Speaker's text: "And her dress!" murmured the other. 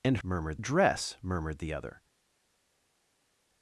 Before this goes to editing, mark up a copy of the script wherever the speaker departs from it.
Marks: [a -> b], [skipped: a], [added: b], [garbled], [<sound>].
"And [her -> murmured] dress!" murmured the other.